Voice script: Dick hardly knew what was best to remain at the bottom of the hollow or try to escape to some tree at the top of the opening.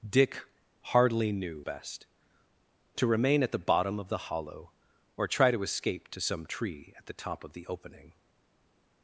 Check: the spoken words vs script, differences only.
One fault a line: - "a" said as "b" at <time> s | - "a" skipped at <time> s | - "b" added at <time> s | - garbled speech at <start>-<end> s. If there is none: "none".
- "what was" skipped at 1.6 s